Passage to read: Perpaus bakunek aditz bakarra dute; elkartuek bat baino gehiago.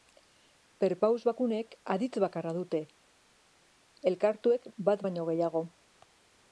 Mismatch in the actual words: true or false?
false